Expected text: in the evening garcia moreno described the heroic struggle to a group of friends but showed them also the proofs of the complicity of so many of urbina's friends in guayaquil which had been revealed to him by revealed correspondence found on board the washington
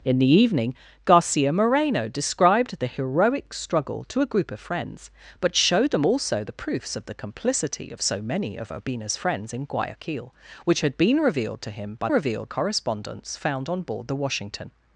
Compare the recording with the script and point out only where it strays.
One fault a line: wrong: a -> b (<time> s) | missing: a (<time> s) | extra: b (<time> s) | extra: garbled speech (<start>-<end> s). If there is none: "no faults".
no faults